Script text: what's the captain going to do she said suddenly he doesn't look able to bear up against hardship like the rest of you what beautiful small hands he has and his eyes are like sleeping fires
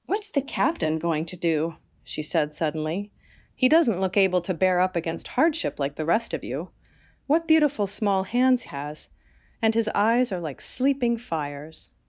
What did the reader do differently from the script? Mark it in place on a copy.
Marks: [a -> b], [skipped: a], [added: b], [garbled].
what's the captain going to do she said suddenly he doesn't look able to bear up against hardship like the rest of you what beautiful small hands [skipped: he] has and his eyes are like sleeping fires